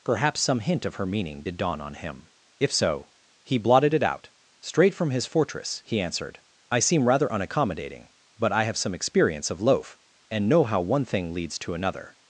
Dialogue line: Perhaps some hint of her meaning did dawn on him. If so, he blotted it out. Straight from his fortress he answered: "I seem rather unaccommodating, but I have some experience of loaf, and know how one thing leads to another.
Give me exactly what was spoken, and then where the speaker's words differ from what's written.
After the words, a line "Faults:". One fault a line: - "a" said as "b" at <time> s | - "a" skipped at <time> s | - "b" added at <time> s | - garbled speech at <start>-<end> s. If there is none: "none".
Perhaps some hint of her meaning did dawn on him. If so, he blotted it out. Straight from his fortress he answered: "I seem rather unaccommodating, but I have some experience of loaf, and know how one thing leads to another.
Faults:
none